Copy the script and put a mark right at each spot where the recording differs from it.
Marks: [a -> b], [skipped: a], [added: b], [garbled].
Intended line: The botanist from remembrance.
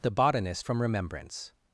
The botanist from remembrance.